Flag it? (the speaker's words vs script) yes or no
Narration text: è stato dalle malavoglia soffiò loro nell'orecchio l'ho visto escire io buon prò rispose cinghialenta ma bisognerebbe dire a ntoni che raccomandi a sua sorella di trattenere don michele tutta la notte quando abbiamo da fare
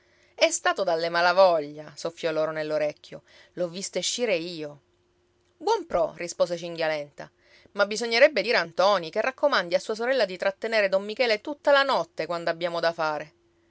no